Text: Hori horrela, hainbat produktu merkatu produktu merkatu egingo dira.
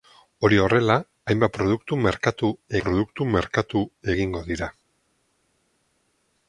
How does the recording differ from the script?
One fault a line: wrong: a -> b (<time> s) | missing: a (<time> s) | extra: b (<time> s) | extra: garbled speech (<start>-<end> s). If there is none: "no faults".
no faults